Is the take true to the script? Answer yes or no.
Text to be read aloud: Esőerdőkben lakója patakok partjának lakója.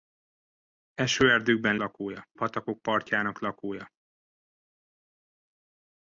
yes